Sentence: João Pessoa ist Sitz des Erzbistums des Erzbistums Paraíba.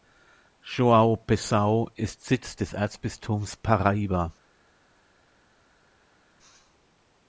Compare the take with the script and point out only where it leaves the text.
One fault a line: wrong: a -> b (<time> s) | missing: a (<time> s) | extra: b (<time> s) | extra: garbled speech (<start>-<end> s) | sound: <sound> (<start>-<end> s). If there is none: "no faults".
missing: des Erzbistums (3.5 s)